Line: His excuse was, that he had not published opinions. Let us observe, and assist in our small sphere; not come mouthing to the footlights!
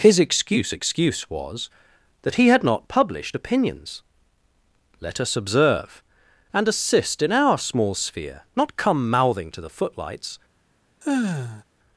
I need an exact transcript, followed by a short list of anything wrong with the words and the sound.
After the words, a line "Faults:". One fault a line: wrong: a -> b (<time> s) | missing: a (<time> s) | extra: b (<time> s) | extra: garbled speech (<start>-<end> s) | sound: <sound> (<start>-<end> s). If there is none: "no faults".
His excuse excuse was, that he had not published opinions. Let us observe, and assist in our small sphere; not come mouthing to the footlights!
Faults:
extra: excuse (0.7 s)
sound: sigh (11.0-11.6 s)